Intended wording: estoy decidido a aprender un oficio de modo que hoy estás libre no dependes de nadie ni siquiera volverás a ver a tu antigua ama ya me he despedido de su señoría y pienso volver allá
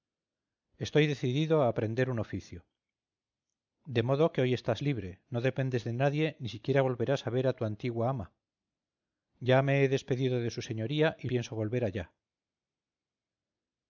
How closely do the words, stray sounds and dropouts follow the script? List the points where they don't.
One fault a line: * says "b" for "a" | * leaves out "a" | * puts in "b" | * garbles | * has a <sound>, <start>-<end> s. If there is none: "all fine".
all fine